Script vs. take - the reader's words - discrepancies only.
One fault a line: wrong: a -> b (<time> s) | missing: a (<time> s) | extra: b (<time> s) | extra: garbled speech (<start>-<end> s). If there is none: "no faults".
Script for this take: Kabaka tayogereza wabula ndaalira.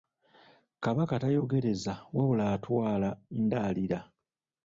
extra: atwala (2.5 s)